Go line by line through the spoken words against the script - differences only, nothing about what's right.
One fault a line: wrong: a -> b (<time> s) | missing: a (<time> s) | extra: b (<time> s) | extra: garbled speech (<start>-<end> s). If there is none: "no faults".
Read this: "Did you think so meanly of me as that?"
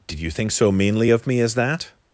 no faults